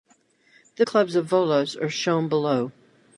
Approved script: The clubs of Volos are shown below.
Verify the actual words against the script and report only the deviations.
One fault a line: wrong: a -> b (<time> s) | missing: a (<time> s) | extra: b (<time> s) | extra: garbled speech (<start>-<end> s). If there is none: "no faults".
no faults